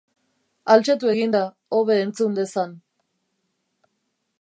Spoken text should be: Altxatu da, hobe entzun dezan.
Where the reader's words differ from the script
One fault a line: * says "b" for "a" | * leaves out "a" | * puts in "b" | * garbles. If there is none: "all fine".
* puts in "egin"